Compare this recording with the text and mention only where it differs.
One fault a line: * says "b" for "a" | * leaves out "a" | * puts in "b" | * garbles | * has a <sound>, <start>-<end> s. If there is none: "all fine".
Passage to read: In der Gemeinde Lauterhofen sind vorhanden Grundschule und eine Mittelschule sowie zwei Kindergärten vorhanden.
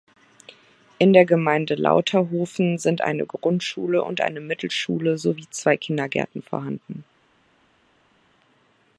* says "eine" for "vorhanden"